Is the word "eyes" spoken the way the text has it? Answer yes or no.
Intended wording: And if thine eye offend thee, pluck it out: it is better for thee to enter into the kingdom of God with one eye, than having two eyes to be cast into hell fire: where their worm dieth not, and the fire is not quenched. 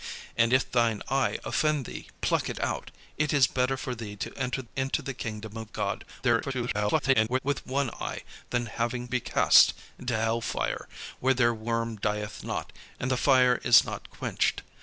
no